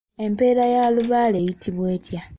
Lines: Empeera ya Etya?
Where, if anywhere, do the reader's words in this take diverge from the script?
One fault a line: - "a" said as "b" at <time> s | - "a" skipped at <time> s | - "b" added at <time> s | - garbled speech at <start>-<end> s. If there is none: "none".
- "Lubaale eyitibwa" added at 0.9 s